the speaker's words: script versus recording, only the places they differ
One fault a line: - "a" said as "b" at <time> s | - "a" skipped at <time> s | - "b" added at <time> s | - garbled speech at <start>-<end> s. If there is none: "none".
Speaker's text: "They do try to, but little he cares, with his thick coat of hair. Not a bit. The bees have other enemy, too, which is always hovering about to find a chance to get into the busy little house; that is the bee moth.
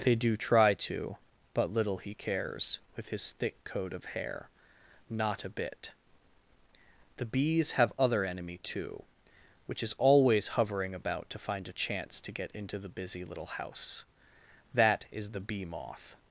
none